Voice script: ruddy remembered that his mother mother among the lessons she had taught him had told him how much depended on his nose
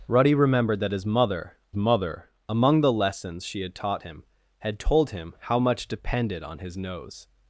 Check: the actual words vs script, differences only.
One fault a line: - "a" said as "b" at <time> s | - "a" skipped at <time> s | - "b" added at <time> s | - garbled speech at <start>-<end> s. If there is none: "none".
none